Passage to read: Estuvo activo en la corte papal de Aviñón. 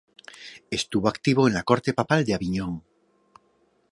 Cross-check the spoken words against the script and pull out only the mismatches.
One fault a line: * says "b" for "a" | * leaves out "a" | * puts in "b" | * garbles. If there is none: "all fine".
all fine